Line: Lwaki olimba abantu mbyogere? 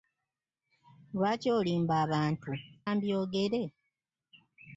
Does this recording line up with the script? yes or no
yes